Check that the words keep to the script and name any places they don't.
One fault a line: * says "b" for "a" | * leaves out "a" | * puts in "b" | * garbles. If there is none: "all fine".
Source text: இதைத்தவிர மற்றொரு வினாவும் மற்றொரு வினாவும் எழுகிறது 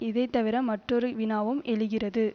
* leaves out "மற்றொரு வினாவும்"